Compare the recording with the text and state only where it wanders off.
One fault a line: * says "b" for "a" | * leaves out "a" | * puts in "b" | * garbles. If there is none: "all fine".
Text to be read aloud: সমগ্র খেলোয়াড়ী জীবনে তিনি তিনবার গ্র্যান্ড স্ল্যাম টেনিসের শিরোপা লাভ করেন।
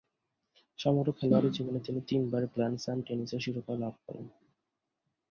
all fine